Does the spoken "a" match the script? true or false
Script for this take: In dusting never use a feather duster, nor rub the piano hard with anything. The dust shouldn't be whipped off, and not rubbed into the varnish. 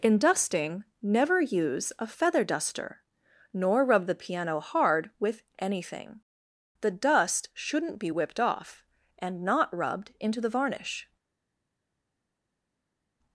true